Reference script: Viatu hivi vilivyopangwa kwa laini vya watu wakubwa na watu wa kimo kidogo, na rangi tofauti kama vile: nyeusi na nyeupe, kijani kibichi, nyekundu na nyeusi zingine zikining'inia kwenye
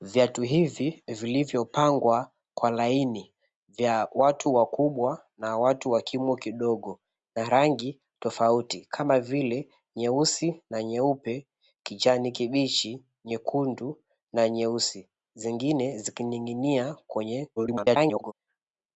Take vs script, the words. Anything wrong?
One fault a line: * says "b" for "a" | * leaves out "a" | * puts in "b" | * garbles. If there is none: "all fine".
* garbles